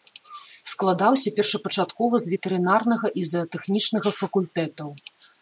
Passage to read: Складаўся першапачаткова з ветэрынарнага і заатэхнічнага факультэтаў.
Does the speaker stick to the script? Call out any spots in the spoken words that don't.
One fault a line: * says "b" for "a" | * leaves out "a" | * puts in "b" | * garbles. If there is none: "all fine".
all fine